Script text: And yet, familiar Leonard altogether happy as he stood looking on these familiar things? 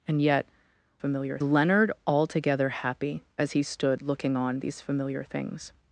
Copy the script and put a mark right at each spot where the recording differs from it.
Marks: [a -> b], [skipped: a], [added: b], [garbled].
And yet, familiar Leonard altogether happy as he stood looking on these familiar things?